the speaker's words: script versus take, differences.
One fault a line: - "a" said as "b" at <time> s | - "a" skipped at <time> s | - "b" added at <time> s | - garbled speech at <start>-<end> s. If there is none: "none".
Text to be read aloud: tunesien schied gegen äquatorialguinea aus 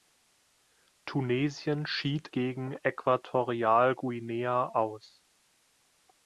none